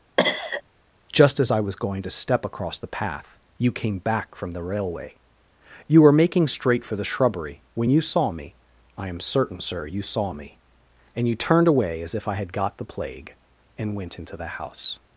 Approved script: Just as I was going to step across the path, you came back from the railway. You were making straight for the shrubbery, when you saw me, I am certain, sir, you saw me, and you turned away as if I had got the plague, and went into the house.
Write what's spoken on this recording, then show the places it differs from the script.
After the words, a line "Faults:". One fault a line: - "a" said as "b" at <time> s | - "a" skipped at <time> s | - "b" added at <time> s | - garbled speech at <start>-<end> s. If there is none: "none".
Just as I was going to step across the path, you came back from the railway. You were making straight for the shrubbery, when you saw me, I am certain, sir, you saw me, and you turned away as if I had got the plague, and went into the house.
Faults:
none